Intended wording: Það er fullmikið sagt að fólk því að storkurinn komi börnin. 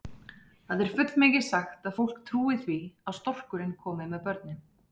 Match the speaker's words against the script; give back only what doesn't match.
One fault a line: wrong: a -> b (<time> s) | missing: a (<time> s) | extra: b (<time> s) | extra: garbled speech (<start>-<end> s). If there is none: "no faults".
extra: trúi (2.3 s)
extra: með (4.2 s)